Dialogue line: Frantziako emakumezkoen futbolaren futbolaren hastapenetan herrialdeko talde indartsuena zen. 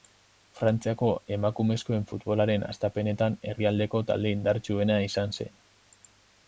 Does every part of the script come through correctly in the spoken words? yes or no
no